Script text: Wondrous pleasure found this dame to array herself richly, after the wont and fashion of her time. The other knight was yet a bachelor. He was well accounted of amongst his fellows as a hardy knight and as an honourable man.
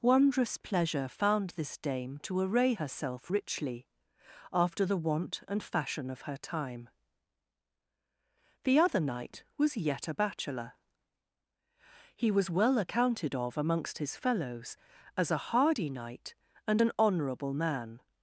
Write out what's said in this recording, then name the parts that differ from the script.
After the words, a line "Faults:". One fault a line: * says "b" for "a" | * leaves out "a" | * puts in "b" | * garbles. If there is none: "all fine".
Wondrous pleasure found this dame to array herself richly, after the wont and fashion of her time. The other knight was yet a bachelor. He was well accounted of amongst his fellows as a hardy knight and an honourable man.
Faults:
* leaves out "as"